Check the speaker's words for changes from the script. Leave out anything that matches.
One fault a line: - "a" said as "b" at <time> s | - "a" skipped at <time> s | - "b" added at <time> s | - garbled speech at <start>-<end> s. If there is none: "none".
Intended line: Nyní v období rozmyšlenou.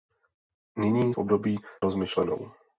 none